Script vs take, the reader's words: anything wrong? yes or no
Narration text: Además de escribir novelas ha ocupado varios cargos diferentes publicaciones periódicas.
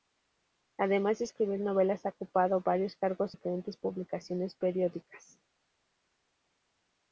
no